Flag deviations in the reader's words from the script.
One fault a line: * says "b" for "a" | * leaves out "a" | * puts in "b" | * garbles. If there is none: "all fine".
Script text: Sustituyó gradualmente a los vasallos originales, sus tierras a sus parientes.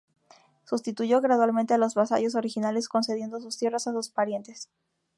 * puts in "concediendo"